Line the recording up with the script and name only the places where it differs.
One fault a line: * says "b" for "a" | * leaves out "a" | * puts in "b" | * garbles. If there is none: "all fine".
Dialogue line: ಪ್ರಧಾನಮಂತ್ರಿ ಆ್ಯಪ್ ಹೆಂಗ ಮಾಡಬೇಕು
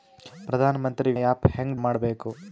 all fine